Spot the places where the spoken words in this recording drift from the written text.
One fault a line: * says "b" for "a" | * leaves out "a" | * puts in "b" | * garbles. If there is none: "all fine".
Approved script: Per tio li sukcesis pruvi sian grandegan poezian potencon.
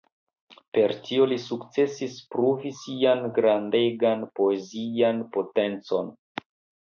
all fine